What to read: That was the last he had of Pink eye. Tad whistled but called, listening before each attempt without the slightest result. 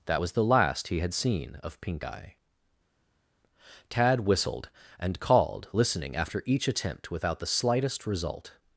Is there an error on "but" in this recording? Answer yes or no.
yes